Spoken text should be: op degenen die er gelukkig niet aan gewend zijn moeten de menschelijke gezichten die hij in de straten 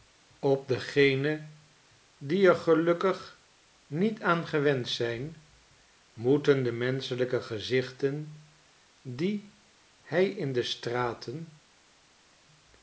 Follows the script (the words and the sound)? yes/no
yes